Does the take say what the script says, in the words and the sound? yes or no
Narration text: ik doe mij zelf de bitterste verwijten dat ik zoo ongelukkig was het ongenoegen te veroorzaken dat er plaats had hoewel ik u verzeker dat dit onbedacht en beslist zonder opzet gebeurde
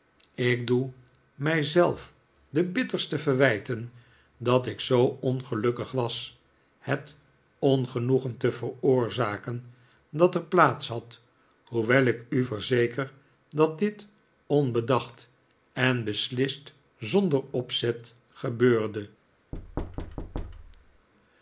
no